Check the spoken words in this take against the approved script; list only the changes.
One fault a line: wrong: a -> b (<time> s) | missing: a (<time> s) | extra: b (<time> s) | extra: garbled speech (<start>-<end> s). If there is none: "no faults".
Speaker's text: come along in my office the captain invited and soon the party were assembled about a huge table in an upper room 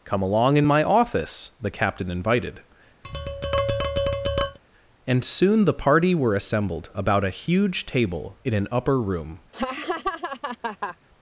no faults